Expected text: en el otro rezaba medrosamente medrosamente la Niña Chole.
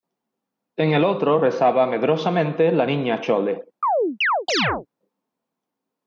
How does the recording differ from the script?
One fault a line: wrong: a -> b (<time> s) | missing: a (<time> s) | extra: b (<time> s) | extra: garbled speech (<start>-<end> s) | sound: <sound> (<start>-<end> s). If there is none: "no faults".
missing: medrosamente (2.7 s)
sound: chirp (3.8-4.9 s)